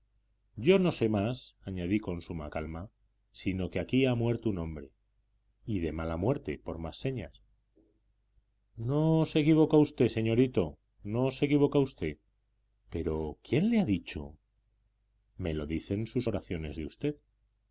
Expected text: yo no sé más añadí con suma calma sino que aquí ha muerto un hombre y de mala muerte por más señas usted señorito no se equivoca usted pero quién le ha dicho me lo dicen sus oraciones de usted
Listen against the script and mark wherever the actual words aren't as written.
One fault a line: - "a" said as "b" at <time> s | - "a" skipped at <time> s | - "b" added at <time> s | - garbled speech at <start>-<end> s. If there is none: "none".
- "no se equivoca" added at 8.8 s